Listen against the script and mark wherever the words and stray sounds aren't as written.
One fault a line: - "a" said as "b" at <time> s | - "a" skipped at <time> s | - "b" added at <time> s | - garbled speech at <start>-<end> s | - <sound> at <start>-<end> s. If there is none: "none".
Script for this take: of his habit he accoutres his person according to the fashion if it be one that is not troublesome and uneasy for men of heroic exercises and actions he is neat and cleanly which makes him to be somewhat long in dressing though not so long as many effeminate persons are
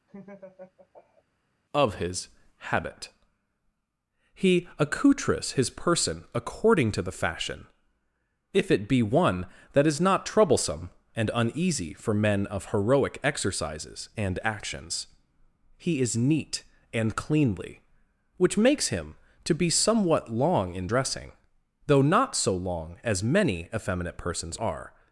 - laugh at 0.1-1.2 s